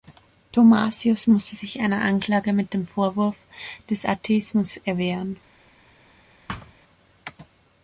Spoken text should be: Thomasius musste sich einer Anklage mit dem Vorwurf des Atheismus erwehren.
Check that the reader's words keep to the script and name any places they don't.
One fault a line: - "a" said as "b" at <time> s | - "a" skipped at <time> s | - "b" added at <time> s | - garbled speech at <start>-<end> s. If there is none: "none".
none